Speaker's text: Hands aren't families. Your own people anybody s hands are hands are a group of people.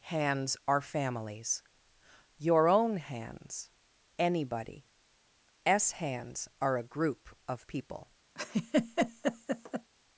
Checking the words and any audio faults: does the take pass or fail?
fail